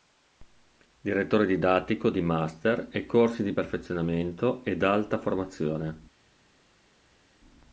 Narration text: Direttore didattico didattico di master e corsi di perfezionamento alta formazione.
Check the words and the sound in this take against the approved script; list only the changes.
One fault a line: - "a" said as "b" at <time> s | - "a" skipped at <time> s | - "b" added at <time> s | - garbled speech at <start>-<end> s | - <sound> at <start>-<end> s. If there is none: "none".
- "didattico" skipped at 2.1 s
- "ed" added at 4.6 s